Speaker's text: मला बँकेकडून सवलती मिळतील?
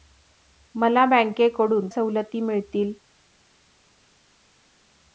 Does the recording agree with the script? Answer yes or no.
yes